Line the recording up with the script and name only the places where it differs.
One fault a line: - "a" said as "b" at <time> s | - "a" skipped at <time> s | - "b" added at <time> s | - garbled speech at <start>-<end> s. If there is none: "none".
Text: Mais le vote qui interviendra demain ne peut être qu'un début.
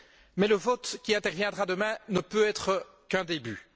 none